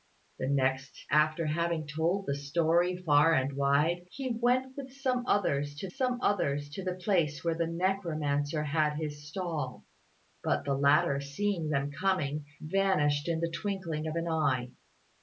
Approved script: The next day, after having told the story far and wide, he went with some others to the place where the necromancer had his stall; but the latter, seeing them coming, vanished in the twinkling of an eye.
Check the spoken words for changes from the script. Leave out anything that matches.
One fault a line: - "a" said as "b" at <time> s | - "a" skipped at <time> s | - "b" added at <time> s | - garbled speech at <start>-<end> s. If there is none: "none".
- "day" skipped at 1.1 s
- "some others to" added at 5.9 s